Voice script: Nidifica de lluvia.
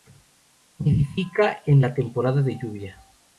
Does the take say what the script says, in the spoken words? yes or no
no